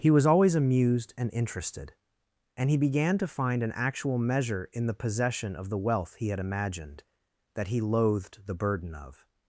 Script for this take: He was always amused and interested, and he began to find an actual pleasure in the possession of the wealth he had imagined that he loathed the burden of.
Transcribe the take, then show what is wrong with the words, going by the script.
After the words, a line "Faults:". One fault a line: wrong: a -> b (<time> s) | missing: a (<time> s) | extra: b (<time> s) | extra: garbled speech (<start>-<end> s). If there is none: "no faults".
He was always amused and interested, and he began to find an actual measure in the possession of the wealth he had imagined that he loathed the burden of.
Faults:
wrong: pleasure -> measure (4.2 s)